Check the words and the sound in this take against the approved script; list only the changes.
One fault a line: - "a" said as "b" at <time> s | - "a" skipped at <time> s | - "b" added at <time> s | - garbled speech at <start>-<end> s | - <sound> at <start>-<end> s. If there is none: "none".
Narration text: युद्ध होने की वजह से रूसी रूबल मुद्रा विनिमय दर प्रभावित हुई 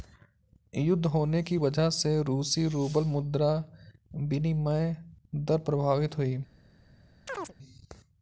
- chirp at 7.3-7.5 s